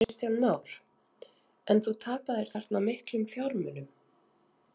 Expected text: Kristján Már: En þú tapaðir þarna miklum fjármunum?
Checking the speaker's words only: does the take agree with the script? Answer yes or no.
yes